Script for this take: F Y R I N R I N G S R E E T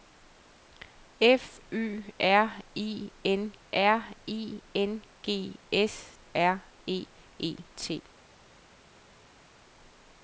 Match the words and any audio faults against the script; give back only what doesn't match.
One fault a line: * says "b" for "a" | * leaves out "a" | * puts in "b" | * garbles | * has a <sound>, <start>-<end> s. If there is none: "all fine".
all fine